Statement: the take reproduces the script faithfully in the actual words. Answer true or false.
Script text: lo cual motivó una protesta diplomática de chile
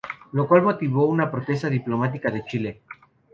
true